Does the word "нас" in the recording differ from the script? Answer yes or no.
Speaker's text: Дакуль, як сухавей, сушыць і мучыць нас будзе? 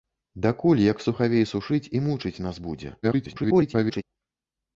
no